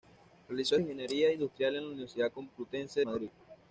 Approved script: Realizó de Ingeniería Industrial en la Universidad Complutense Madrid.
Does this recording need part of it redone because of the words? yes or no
no